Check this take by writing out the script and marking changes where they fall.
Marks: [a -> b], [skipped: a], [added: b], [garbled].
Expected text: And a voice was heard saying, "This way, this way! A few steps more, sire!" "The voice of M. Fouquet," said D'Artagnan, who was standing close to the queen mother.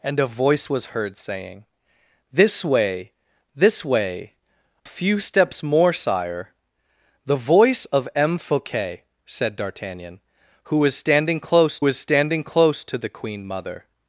And a voice was heard saying, "This way, this way! [skipped: A] few steps more, sire!" "The voice of M. Fouquet," said D'Artagnan, who was standing close [added: was standing close] to the queen mother.